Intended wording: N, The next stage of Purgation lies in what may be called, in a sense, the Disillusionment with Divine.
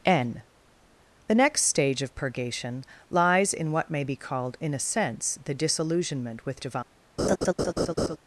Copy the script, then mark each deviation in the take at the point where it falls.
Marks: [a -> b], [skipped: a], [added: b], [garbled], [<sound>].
N, The next stage of Purgation lies in what may be called, in a sense, the Disillusionment with Divine. [laugh]